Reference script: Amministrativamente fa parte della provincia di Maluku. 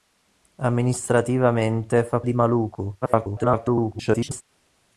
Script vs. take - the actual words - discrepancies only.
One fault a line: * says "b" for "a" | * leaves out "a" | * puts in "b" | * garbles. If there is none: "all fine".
* leaves out "parte della provincia"
* garbles